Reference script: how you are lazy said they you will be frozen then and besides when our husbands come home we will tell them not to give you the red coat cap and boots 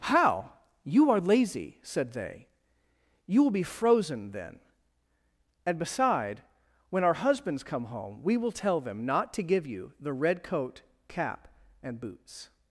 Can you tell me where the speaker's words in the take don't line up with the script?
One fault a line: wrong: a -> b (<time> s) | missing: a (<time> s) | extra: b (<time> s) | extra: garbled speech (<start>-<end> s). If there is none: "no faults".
wrong: besides -> beside (5.8 s)